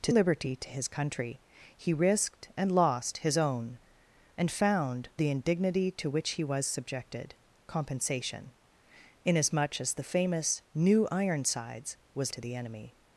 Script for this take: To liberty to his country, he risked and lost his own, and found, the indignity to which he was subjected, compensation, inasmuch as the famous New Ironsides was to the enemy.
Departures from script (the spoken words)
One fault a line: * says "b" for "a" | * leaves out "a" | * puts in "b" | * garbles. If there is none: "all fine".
all fine